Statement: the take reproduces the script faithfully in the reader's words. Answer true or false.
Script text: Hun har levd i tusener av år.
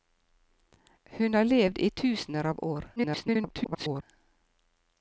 false